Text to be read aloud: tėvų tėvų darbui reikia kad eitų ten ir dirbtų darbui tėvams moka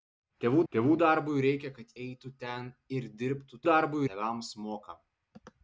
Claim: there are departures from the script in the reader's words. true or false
false